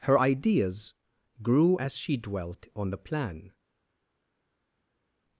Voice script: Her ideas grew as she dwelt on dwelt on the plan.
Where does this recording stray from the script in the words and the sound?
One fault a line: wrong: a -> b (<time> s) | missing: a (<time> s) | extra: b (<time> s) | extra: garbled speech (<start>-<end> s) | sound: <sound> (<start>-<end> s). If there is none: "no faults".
missing: dwelt on (2.9 s)